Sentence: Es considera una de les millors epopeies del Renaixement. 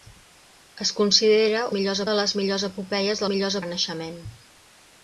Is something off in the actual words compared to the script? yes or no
yes